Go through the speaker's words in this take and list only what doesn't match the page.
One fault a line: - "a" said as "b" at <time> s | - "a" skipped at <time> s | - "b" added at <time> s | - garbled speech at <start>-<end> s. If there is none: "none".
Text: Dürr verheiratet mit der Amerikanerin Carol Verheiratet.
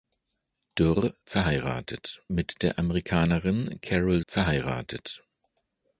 none